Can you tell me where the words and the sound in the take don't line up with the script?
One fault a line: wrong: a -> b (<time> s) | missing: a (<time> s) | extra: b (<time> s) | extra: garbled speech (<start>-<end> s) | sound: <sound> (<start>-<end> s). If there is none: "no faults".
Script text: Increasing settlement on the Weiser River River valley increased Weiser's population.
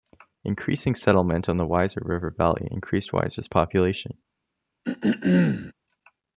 missing: River (2.3 s)
sound: throat clearing (4.8-5.7 s)